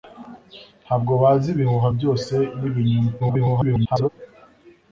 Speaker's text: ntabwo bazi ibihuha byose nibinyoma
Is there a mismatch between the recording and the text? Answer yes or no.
yes